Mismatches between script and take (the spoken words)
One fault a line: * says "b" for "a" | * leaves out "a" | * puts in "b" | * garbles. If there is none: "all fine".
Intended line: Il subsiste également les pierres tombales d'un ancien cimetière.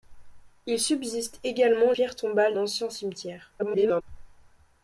* leaves out "les"
* leaves out "d'un"
* garbles